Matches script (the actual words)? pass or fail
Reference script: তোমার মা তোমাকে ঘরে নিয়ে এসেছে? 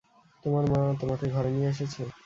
pass